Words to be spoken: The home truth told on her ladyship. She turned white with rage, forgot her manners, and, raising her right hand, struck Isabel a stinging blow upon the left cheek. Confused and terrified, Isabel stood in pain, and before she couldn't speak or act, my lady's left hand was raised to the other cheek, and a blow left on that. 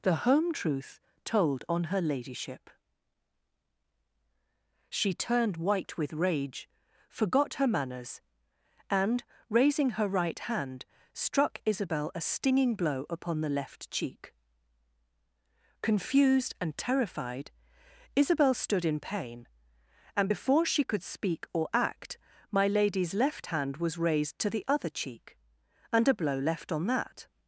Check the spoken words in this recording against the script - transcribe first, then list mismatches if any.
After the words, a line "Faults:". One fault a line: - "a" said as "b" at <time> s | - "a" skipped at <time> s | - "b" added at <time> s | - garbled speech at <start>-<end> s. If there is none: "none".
The home truth told on her ladyship. She turned white with rage, forgot her manners, and, raising her right hand, struck Isabel a stinging blow upon the left cheek. Confused and terrified, Isabel stood in pain, and before she could speak or act, my lady's left hand was raised to the other cheek, and a blow left on that.
Faults:
- "couldn't" said as "could" at 20.8 s